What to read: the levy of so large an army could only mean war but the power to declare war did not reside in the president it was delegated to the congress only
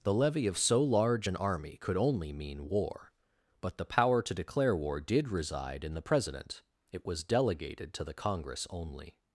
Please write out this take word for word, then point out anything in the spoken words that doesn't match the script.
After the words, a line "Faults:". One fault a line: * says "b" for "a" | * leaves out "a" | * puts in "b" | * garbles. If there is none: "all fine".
the levy of so large an army could only mean war but the power to declare war did reside in the president it was delegated to the congress only
Faults:
* leaves out "not"